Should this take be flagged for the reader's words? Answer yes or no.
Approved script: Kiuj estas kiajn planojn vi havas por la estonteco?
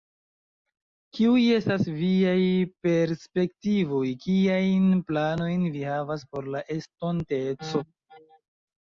yes